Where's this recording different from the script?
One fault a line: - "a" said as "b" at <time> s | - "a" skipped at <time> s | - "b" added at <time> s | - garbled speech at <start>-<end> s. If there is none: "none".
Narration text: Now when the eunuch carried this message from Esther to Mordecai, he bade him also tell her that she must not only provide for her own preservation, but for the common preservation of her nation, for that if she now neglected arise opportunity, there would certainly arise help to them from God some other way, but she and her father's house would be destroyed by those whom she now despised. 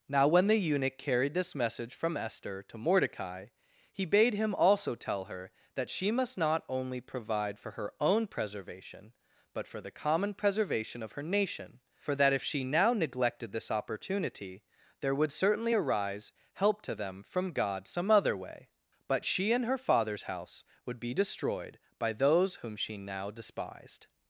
- "arise" said as "this" at 13.5 s